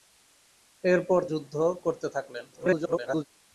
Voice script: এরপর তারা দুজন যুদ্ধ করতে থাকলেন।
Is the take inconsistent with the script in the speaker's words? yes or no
yes